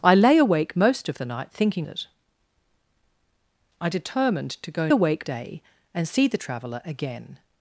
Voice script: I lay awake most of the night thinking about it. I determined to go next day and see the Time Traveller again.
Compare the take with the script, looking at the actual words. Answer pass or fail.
fail